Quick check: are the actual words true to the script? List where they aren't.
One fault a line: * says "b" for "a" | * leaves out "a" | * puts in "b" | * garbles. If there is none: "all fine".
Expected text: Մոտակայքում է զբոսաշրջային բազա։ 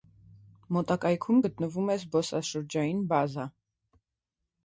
* puts in "գտնվում"